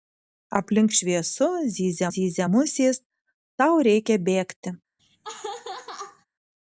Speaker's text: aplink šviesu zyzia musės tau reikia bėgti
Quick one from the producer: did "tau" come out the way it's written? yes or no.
yes